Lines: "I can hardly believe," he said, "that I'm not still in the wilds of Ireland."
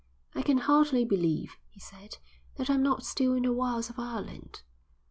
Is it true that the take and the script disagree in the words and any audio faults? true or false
false